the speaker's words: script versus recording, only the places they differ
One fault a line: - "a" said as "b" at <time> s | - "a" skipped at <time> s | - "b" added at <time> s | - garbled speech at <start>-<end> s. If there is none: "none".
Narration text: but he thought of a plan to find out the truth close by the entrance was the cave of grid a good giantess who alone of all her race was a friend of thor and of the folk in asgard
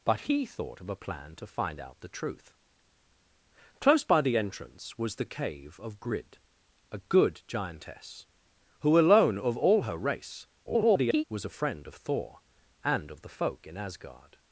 - garbled speech at 10.7-11.2 s